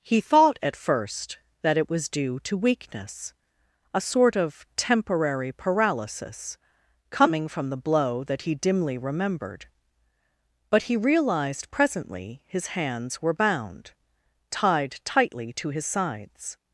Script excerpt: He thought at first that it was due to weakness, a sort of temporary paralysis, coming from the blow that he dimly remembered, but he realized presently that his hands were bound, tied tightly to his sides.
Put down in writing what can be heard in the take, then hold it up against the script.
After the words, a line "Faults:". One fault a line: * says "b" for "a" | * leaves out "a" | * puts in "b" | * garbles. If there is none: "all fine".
He thought at first that it was due to weakness, a sort of temporary paralysis, coming from the blow that he dimly remembered, but he realized presently his hands were bound, tied tightly to his sides.
Faults:
* leaves out "that"